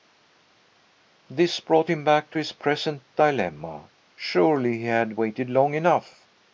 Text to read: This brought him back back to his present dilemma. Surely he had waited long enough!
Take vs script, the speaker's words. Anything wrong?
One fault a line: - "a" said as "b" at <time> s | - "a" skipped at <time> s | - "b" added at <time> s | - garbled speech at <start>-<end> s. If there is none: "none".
- "back" skipped at 2.3 s